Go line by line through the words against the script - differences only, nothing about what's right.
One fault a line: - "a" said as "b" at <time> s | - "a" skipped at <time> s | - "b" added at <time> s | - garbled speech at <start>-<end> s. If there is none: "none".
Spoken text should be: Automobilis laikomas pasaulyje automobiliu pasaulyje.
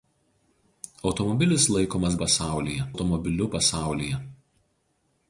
none